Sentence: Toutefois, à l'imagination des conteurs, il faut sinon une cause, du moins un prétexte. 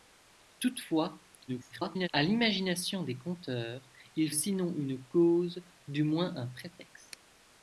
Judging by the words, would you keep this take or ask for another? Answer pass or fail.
fail